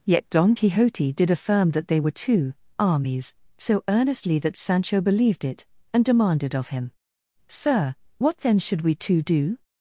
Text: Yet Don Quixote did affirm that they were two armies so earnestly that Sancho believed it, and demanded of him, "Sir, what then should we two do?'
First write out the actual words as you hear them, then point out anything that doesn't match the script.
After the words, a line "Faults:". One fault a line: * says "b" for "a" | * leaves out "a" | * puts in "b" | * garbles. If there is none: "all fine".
Yet Don Quixote did affirm that they were two armies so earnestly that Sancho believed it, and demanded of him, "Sir, what then should we two do?'
Faults:
all fine